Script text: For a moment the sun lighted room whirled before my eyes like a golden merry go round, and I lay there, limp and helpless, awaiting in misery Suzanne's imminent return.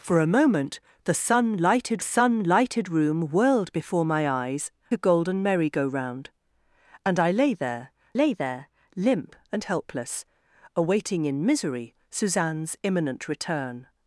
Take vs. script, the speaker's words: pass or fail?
fail